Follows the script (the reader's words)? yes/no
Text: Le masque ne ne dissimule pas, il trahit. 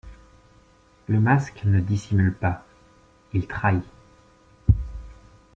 no